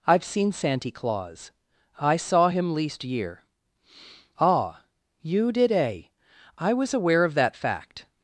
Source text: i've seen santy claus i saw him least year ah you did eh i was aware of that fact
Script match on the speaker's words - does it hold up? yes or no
yes